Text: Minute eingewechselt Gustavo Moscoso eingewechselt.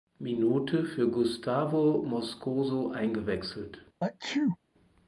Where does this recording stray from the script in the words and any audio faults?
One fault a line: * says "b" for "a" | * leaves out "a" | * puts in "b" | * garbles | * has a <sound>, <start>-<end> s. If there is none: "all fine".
* says "für" for "eingewechselt"
* has a sneeze, 4.0-4.6 s